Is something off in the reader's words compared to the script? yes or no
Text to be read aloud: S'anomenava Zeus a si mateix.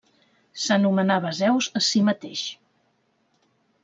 no